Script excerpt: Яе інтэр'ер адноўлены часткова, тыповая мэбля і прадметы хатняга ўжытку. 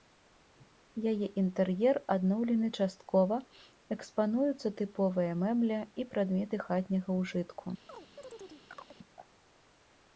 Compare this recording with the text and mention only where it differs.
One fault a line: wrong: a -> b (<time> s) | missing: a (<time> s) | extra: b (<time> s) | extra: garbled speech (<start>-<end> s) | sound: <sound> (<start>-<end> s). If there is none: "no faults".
extra: экспануюцца (4.0 s)
sound: chirp (7.9-9.0 s)